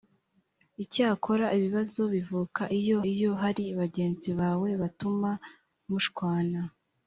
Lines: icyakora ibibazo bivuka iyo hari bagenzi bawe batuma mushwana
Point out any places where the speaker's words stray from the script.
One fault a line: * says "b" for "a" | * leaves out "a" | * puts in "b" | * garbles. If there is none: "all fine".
* puts in "iyo"